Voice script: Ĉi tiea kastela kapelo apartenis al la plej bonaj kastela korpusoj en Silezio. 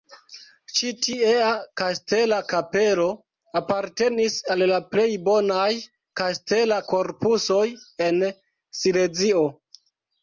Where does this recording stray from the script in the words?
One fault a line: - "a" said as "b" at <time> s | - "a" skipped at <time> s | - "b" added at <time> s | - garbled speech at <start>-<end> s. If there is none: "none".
none